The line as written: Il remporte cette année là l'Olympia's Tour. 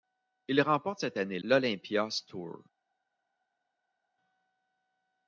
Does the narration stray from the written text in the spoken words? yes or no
yes